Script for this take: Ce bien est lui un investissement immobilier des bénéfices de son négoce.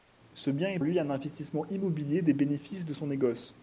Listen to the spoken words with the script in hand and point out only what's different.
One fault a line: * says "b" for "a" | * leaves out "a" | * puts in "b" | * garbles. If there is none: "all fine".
all fine